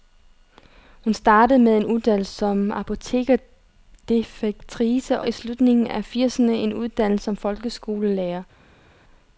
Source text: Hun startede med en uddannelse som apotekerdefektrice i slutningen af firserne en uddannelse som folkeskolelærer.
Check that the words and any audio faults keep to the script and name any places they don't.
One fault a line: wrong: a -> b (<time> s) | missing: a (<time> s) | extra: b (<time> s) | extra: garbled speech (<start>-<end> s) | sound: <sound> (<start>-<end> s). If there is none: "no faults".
no faults